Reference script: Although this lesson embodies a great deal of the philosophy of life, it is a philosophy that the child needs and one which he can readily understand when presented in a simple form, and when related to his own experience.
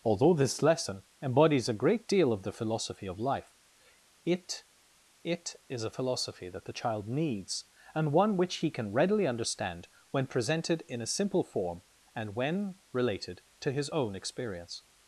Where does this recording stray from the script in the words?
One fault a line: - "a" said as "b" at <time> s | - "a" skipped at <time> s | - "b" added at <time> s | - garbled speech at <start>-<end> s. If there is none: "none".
- "it" added at 5.2 s